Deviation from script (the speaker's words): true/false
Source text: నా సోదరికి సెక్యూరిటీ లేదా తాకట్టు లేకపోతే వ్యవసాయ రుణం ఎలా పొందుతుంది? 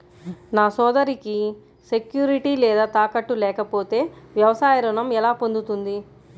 false